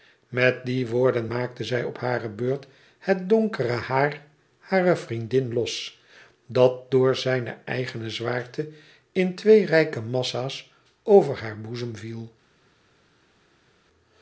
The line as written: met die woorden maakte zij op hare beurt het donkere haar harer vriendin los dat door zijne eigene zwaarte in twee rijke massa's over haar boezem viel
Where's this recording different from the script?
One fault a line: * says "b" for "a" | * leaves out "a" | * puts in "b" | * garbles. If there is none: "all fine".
all fine